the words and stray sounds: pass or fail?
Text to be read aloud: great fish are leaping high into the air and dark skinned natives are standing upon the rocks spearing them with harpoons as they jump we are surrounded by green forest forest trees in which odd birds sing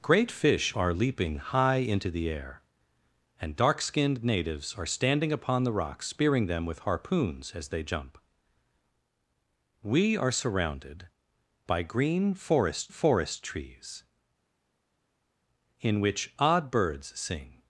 pass